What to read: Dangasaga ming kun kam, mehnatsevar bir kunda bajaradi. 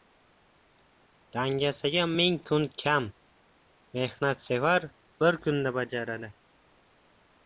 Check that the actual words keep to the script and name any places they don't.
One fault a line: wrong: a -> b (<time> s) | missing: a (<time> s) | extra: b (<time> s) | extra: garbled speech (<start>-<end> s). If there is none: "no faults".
no faults